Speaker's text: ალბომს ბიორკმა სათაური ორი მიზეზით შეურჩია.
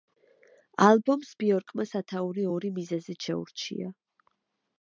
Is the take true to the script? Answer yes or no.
yes